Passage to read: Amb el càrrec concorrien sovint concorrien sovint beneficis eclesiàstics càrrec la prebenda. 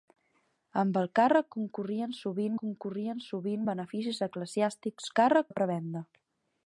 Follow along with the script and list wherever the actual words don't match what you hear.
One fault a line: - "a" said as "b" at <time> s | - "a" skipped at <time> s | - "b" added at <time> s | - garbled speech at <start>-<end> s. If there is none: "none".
none